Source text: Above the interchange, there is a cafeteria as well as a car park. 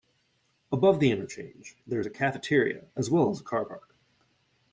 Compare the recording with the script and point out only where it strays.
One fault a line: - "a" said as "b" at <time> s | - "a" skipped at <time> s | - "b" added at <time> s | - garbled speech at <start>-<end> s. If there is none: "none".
none